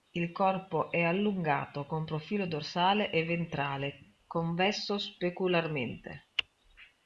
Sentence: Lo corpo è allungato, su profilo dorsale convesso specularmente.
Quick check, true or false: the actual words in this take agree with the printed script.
false